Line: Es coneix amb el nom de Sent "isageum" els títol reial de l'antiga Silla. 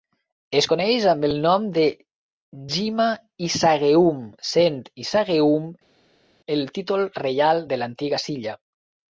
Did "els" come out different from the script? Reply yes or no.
yes